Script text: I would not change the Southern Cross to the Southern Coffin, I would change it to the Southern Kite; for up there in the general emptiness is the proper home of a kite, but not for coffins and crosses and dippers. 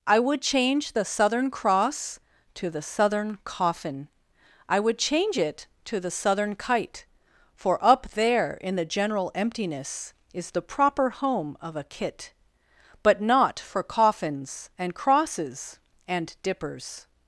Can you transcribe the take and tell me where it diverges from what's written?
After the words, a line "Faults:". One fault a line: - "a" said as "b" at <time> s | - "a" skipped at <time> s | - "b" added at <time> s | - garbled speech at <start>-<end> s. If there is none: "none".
I would change the Southern Cross to the Southern Coffin, I would change it to the Southern Kite; for up there in the general emptiness is the proper home of a kit, but not for coffins and crosses and dippers.
Faults:
- "not" skipped at 0.4 s
- "kite" said as "kit" at 11.8 s